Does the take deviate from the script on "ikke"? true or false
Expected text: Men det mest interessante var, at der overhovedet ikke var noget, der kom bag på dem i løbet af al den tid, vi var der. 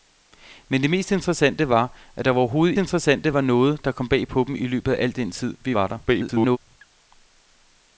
true